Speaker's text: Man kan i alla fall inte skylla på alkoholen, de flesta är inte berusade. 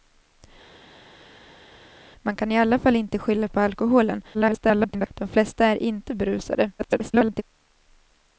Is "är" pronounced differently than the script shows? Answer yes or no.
no